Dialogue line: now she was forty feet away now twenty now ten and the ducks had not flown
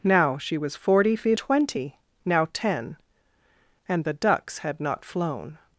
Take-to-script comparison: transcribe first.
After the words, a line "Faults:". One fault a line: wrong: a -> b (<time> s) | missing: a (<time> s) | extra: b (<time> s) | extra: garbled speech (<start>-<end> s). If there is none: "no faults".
now she was forty feet twenty now ten and the ducks had not flown
Faults:
missing: away now (1.4 s)